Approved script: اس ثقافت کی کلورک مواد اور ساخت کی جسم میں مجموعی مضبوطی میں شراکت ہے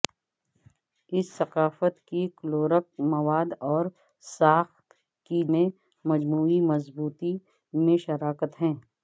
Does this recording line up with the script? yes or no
no